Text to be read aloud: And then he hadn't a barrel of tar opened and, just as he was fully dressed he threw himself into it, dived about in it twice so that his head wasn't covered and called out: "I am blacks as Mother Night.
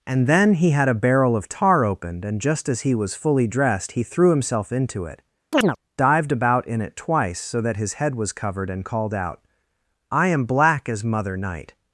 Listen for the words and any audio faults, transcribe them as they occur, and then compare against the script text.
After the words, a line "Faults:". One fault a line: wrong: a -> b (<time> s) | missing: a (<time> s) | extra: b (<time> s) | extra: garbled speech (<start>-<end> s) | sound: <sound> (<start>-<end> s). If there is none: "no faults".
And then he had a barrel of tar opened and, just as he was fully dressed he threw himself into it, dived about in it twice so that his head was covered and called out: "I am black as Mother Night.
Faults:
wrong: hadn't -> had (0.7 s)
sound: chirp (5.5-5.8 s)
wrong: wasn't -> was (8.2 s)
wrong: blacks -> black (10.5 s)